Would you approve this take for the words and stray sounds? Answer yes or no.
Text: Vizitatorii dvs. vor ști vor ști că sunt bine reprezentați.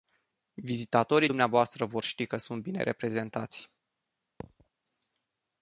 no